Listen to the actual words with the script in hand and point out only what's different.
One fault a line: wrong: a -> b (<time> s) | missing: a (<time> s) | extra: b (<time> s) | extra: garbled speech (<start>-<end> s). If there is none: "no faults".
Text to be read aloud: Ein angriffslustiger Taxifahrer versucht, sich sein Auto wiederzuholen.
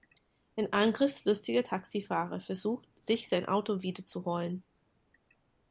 no faults